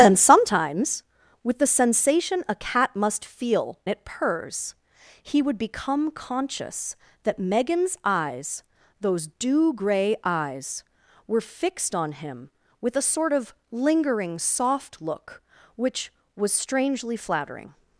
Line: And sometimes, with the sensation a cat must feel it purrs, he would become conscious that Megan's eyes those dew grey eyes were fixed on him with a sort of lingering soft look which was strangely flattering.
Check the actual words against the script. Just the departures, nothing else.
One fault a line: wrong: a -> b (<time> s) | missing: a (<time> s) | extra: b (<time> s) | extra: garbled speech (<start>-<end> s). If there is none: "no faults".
no faults